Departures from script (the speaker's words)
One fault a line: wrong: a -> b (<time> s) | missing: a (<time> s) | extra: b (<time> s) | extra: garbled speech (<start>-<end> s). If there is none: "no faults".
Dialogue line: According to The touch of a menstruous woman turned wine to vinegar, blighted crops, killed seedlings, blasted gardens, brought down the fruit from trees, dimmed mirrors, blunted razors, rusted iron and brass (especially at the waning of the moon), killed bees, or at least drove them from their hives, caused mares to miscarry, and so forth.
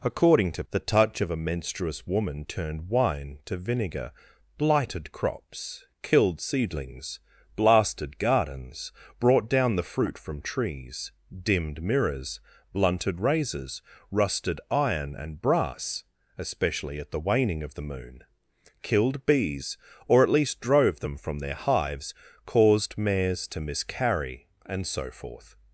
no faults